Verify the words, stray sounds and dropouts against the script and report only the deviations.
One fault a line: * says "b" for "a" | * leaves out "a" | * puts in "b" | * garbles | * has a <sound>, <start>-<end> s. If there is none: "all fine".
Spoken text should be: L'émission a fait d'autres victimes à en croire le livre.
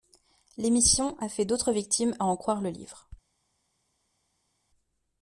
all fine